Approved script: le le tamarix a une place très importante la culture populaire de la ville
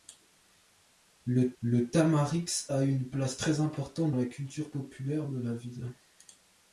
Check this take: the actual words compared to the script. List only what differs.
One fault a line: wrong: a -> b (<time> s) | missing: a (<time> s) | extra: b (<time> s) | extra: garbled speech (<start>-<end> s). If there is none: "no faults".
no faults